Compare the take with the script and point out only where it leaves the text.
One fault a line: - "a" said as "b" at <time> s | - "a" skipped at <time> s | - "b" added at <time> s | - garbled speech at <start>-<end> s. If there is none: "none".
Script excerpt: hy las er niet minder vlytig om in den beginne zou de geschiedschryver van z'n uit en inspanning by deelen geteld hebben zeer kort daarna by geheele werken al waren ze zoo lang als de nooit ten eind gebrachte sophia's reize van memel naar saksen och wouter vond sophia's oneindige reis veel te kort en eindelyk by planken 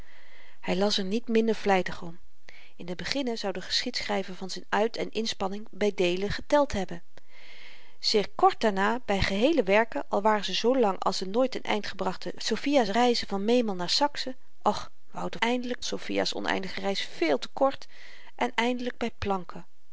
- "vond" said as "eindelyk" at 15.4 s